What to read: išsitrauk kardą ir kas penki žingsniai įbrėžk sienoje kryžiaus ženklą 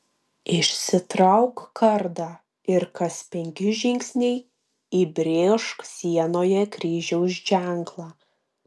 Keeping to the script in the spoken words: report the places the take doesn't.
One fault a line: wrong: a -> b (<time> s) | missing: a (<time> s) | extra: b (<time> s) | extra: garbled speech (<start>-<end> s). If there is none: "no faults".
no faults